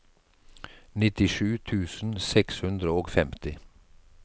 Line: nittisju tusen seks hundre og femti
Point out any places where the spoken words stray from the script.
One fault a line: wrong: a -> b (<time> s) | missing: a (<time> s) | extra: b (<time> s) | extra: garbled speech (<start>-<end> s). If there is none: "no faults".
no faults